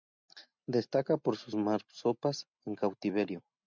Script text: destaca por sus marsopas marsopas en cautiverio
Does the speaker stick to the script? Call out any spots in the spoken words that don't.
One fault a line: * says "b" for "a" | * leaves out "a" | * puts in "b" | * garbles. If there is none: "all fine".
* leaves out "marsopas"